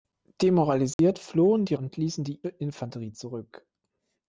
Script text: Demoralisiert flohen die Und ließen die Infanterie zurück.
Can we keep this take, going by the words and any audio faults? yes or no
no